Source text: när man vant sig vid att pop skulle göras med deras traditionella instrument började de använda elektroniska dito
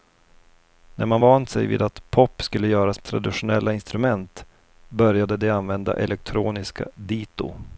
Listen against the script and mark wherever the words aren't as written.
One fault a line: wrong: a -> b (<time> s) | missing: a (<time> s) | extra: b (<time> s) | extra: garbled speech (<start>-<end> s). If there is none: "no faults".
missing: med deras (3.0 s)